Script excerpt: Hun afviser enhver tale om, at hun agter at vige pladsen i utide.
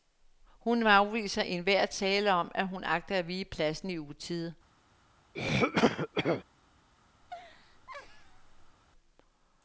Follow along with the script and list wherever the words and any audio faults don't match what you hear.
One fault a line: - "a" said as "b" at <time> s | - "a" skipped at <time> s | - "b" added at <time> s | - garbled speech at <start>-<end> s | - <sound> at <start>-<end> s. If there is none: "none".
- throat clearing at 5.3-6.4 s
- laugh at 7.2-8.8 s